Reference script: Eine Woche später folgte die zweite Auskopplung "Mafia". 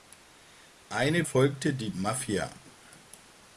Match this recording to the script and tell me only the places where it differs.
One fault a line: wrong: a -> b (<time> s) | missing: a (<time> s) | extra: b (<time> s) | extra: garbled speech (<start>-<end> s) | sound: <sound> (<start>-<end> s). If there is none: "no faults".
missing: Woche später (1.3 s)
missing: zweite Auskopplung (1.9 s)